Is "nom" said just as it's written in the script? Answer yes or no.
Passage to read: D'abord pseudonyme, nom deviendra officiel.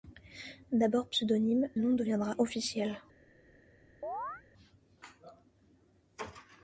yes